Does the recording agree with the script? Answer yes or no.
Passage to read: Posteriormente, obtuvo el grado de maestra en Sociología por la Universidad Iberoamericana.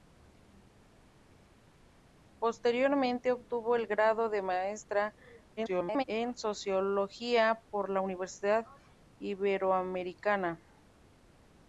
no